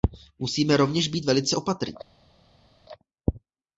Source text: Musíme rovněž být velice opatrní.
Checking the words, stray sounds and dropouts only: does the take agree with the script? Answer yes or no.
yes